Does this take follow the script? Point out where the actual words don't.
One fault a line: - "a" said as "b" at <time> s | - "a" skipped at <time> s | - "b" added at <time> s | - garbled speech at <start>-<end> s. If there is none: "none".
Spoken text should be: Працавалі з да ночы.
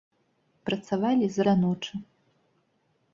none